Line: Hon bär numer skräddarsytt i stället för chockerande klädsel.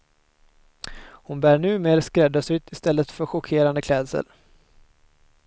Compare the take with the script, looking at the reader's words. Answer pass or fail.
pass